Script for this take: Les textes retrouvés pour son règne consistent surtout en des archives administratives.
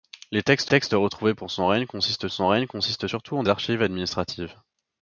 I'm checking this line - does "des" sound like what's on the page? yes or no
no